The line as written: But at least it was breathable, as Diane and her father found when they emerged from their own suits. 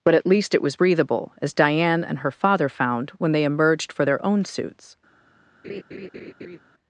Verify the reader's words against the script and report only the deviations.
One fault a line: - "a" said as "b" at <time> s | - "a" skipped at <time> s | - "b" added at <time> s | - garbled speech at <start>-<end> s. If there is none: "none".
- "from" said as "for" at 3.9 s